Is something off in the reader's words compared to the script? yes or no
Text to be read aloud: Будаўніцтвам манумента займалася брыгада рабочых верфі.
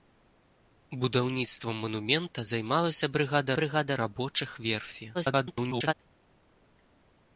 yes